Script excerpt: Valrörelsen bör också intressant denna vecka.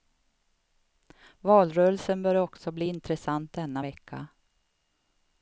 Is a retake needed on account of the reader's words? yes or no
yes